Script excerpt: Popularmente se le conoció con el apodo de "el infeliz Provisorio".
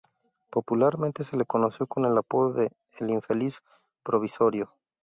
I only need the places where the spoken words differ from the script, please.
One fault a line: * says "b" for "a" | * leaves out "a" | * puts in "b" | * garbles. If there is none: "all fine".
all fine